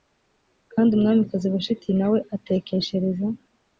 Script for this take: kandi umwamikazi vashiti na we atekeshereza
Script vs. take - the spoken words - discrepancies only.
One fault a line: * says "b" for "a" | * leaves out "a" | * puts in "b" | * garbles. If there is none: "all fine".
all fine